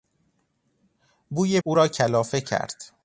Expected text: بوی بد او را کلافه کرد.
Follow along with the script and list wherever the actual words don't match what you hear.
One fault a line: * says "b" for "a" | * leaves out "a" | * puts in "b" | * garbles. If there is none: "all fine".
* leaves out "بد"